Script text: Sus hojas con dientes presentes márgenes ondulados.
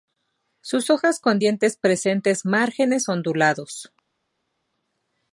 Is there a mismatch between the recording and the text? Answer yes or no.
no